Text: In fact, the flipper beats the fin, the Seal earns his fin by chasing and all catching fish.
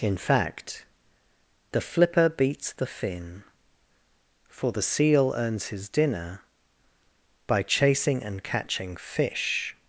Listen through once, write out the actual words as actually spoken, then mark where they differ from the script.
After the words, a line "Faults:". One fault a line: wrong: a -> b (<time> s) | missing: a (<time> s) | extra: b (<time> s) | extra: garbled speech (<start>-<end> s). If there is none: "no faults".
In fact, the flipper beats the fin, for the Seal earns his dinner by chasing and catching fish.
Faults:
extra: for (4.5 s)
wrong: fin -> dinner (5.9 s)
missing: all (8.4 s)